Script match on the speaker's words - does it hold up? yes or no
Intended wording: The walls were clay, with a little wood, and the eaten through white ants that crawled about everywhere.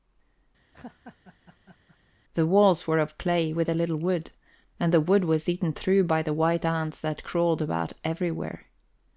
no